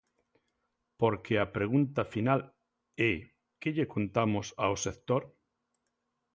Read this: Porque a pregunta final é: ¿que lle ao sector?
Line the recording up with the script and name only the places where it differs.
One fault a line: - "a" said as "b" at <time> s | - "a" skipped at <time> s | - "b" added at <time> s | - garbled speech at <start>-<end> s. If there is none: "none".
- "contamos" added at 4.0 s